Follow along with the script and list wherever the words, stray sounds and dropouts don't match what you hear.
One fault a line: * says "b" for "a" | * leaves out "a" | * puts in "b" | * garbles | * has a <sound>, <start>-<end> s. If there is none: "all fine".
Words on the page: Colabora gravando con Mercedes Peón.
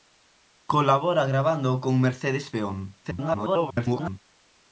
* garbles